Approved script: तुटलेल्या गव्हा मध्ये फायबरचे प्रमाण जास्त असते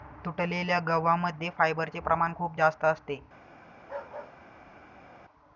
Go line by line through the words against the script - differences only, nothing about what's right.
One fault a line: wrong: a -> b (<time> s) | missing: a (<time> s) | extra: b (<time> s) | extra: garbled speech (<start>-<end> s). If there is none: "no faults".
extra: खूप (2.4 s)